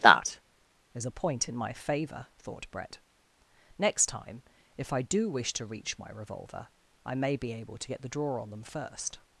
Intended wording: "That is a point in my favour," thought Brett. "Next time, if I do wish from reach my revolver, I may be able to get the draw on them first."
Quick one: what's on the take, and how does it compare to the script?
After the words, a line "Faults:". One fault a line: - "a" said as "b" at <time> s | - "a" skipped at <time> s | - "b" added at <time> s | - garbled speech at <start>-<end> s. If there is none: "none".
"That is a point in my favour," thought Brett. "Next time, if I do wish to reach my revolver, I may be able to get the draw on them first."
Faults:
- "from" said as "to" at 5.5 s